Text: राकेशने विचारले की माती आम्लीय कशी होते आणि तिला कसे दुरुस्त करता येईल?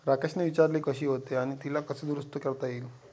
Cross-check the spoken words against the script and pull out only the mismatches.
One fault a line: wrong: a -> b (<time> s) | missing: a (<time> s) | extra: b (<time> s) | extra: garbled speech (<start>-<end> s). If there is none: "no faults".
missing: की माती आम्लीय (0.8 s)